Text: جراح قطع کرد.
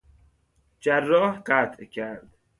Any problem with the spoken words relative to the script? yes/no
no